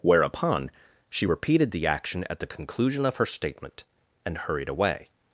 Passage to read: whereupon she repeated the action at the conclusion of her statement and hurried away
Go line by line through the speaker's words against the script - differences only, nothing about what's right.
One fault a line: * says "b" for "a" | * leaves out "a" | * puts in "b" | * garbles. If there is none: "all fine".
all fine